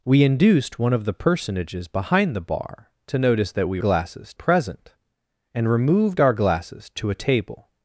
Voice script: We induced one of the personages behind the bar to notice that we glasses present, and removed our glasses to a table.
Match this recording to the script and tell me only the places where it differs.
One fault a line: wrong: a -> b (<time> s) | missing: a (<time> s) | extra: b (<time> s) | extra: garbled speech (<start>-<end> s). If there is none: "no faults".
no faults